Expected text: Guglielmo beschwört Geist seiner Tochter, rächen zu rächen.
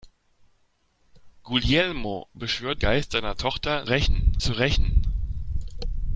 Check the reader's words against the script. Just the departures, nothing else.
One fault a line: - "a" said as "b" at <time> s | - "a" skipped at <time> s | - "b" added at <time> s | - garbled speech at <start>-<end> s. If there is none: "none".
none